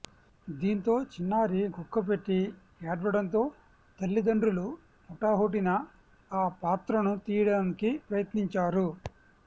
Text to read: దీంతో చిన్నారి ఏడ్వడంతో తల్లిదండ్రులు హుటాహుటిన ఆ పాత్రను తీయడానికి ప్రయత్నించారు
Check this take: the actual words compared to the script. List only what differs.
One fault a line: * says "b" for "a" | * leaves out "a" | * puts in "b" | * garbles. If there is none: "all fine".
* puts in "గుక్కపెట్టి"